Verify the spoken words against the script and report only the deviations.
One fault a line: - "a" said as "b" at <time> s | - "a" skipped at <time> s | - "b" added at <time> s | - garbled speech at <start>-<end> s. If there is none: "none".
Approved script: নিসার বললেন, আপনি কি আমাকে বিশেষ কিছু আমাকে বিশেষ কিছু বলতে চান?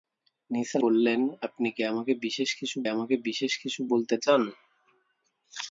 none